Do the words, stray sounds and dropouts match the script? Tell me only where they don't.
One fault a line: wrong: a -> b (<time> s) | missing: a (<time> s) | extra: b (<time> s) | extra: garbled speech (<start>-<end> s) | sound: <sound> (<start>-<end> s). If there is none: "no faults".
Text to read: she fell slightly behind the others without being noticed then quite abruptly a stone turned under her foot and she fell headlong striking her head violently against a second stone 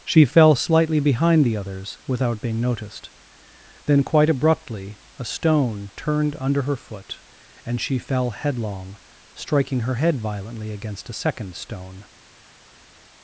no faults